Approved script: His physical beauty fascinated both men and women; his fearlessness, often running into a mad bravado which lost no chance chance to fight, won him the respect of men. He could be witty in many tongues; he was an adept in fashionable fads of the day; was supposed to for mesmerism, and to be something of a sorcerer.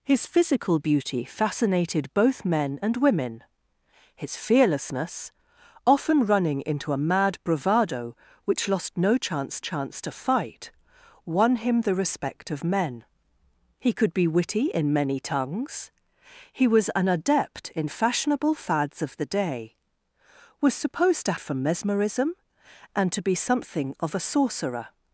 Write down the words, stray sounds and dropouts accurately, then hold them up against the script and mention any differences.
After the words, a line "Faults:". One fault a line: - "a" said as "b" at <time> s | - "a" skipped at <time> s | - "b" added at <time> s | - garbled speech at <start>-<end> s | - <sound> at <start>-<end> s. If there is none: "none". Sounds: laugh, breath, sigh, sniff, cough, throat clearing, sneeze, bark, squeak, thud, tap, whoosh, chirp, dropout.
His physical beauty fascinated both men and women; his fearlessness, often running into a mad bravado which lost no chance chance to fight, won him the respect of men. He could be witty in many tongues; he was an adept in fashionable fads of the day; was supposed to for mesmerism, and to be something of a sorcerer.
Faults:
none